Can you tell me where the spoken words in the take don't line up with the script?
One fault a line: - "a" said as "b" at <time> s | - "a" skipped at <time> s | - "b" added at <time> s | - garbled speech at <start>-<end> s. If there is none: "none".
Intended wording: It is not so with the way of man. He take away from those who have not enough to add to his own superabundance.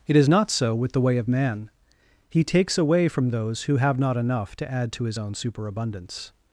- "take" said as "takes" at 2.4 s